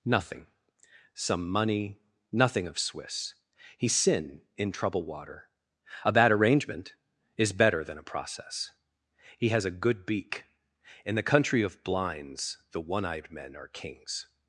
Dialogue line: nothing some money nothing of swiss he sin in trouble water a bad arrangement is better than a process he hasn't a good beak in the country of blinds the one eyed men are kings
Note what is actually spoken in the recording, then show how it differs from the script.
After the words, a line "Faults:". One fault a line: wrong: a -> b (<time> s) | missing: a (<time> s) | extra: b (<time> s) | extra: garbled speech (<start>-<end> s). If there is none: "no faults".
nothing some money nothing of swiss he sin in trouble water a bad arrangement is better than a process he has a good beak in the country of blinds the one eyed men are kings
Faults:
wrong: hasn't -> has (9.5 s)